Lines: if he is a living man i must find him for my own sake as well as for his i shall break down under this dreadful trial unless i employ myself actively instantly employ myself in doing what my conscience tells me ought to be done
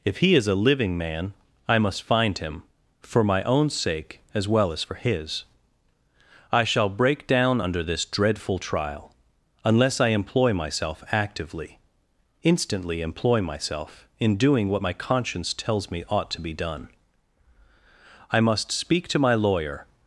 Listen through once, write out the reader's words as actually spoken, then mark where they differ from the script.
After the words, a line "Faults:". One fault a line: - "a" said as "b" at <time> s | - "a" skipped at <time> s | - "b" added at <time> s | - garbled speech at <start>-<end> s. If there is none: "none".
if he is a living man i must find him for my own sake as well as for his i shall break down under this dreadful trial unless i employ myself actively instantly employ myself in doing what my conscience tells me ought to be done i must speak to my lawyer
Faults:
- "i must speak to my lawyer" added at 18.3 s